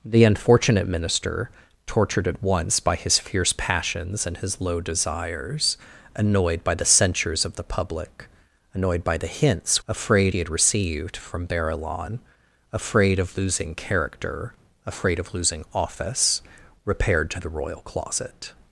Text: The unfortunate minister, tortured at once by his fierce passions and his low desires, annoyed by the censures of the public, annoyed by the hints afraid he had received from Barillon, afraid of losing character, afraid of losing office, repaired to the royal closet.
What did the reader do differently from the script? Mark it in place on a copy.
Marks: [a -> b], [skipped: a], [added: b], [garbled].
The unfortunate minister, tortured at once by his fierce passions and his low desires, annoyed by the censures of the public, annoyed by the hints afraid he had received from Barillon, afraid of losing character, afraid of losing office, repaired to the royal closet.